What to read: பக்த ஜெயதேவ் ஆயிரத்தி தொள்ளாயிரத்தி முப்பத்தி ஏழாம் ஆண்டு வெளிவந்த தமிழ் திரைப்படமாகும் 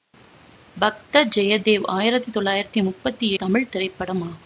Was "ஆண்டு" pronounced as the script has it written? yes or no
no